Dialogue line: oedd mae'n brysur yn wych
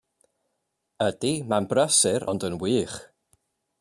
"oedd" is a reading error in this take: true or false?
true